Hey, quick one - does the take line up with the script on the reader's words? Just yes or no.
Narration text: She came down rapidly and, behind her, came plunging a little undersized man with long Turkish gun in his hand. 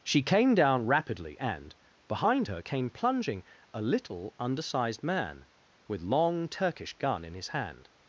yes